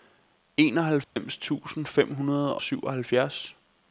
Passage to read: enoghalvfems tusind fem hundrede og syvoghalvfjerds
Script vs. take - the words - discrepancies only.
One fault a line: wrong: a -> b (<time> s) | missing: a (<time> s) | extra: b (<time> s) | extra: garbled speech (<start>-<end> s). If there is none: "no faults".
missing: og (2.6 s)